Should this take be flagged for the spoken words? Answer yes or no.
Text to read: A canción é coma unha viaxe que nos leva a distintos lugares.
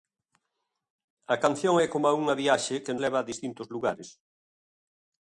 yes